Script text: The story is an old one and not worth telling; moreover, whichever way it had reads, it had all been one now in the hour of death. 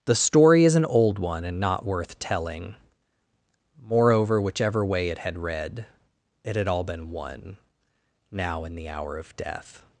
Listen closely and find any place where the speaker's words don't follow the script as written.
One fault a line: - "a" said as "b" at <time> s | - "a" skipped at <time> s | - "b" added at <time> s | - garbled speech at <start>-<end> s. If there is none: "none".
- "reads" said as "read" at 5.4 s